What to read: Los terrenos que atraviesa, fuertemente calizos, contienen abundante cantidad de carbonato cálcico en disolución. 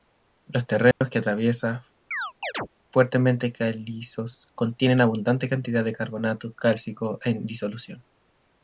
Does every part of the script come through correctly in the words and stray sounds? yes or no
no